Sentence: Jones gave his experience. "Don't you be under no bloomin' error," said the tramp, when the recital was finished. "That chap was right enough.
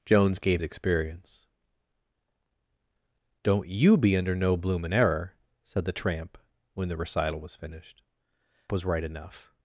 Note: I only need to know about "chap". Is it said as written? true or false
false